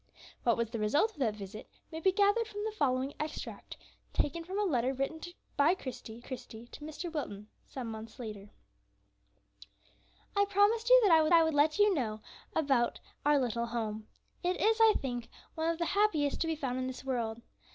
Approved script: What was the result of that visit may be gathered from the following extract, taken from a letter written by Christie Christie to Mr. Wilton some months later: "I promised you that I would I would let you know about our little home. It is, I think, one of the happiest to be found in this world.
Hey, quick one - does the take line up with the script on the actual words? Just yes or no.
yes